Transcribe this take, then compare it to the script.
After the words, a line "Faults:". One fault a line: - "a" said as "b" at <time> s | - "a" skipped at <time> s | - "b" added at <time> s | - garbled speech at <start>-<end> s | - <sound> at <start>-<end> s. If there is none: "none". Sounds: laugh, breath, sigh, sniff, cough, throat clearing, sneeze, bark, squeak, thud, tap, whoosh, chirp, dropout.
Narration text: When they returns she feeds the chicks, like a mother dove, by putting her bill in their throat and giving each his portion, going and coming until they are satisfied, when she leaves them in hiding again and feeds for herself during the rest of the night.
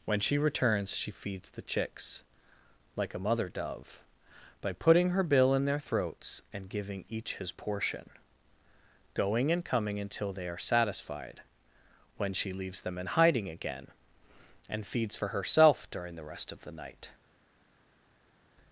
When she returns she feeds the chicks, like a mother dove, by putting her bill in their throats and giving each his portion, going and coming until they are satisfied, when she leaves them in hiding again and feeds for herself during the rest of the night.
Faults:
- "they" said as "she" at 0.2 s
- "throat" said as "throats" at 5.8 s